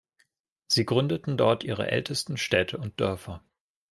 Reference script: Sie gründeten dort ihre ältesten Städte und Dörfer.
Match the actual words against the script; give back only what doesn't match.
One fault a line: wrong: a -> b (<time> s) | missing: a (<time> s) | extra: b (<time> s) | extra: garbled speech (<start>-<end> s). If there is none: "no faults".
no faults